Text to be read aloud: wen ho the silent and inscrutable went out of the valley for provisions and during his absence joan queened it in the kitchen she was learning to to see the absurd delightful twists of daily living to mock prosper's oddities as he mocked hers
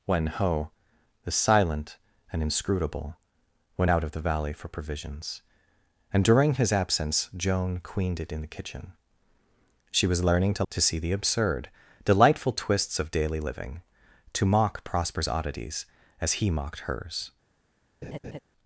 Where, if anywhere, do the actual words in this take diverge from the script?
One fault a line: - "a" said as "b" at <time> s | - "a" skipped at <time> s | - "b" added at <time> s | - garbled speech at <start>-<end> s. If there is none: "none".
none